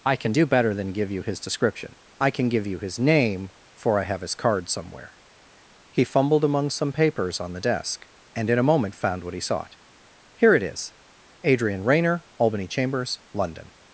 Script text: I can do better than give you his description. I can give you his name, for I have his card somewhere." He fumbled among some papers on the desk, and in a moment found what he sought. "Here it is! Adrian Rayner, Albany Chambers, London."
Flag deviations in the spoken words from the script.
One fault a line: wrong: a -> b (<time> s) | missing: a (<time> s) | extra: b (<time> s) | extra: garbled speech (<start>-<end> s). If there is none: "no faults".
no faults